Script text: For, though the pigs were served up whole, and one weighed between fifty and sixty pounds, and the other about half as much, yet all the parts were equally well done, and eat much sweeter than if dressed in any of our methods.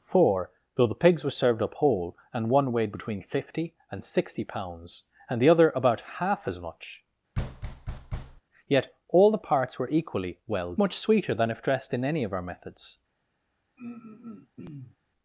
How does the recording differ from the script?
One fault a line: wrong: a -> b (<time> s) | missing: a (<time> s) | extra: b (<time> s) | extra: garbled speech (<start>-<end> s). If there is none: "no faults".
missing: done and eat (10.7 s)